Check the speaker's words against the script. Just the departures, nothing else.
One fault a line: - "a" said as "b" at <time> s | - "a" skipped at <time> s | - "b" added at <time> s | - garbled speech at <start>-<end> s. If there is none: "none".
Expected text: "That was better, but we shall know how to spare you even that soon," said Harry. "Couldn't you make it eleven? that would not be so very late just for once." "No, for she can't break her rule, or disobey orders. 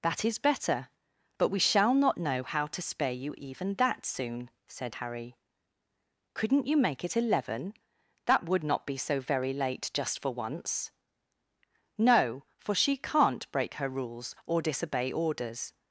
- "was" said as "is" at 0.2 s
- "not" added at 1.9 s
- "rule" said as "rules" at 13.9 s